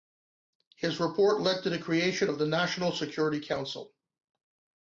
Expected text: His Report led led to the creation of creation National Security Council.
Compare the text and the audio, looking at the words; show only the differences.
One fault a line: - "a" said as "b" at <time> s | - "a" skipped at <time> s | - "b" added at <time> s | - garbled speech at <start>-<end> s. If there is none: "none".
- "led" skipped at 1.6 s
- "creation" said as "the" at 2.4 s